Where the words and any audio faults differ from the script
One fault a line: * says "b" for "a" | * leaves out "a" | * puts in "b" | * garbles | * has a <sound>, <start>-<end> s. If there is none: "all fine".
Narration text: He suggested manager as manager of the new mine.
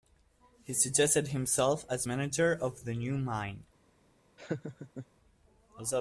* says "himself" for "manager"
* has a laugh, 4.4-5.1 s